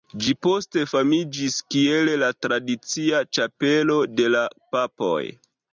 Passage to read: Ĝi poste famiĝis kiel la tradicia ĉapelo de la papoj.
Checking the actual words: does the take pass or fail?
pass